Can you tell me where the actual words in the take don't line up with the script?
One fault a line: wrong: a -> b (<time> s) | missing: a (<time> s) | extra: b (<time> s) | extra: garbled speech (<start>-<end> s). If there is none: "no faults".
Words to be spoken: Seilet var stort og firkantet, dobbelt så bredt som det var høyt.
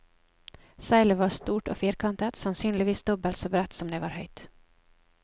extra: sannsynligvis (2.4 s)